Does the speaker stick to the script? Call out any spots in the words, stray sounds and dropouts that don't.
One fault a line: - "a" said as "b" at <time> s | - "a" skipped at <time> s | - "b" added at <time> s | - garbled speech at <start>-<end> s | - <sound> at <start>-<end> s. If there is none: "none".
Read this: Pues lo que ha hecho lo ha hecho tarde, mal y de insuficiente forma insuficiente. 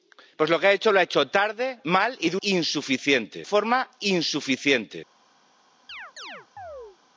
- chirp at 5.9-7.0 s